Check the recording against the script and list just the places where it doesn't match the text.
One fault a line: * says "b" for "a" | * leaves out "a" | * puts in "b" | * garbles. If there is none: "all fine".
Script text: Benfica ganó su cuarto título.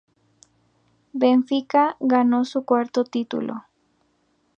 all fine